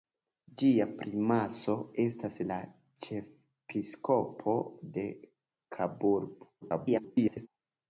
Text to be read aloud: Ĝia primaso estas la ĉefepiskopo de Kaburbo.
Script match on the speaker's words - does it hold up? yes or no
no